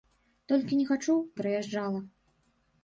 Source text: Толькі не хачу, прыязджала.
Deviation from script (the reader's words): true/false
false